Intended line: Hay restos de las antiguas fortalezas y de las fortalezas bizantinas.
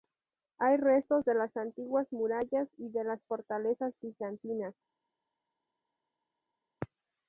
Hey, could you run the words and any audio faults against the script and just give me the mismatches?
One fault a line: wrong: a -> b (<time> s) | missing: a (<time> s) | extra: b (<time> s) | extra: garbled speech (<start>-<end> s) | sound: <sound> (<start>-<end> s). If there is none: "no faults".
wrong: fortalezas -> murallas (2.1 s)